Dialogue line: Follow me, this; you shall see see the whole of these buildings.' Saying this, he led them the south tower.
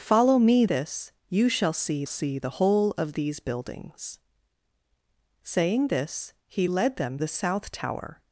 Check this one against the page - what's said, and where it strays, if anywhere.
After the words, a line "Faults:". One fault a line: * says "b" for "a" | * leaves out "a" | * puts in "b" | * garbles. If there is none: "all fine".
Follow me, this; you shall see see the whole of these buildings.' Saying this, he led them the south tower.
Faults:
all fine